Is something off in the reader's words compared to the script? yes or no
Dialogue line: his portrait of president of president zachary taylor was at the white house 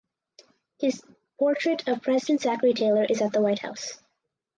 yes